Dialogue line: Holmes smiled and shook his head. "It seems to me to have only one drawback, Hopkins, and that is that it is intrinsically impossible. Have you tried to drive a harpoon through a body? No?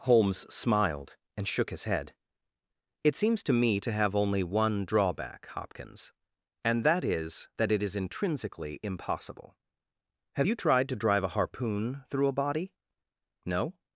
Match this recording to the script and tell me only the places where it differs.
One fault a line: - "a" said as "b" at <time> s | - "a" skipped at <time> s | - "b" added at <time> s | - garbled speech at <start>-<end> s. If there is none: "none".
none